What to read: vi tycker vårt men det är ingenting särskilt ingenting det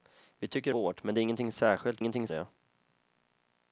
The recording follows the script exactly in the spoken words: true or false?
true